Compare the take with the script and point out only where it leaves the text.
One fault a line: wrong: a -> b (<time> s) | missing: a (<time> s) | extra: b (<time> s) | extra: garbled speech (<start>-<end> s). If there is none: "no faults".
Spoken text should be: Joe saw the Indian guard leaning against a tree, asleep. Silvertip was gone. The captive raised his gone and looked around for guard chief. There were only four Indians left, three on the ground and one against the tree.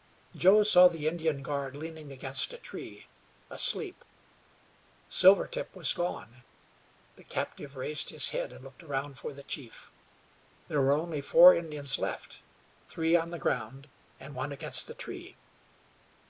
wrong: gone -> head (8.3 s)
wrong: guard -> the (9.3 s)